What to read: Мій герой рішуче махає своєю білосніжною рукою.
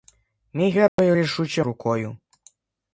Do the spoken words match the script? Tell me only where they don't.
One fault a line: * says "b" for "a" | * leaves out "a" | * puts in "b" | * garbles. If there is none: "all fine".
* leaves out "махає своєю білосніжною"